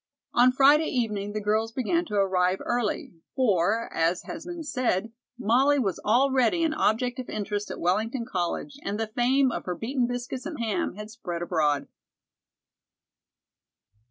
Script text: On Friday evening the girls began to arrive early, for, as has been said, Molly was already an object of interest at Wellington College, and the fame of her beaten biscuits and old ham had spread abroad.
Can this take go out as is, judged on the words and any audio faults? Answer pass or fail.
fail